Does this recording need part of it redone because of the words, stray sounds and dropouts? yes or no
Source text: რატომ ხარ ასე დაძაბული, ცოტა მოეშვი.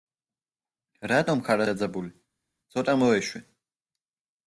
yes